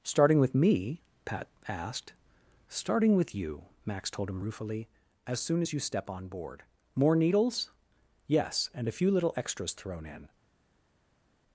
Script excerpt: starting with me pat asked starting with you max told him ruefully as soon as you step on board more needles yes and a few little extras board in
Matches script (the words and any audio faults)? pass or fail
fail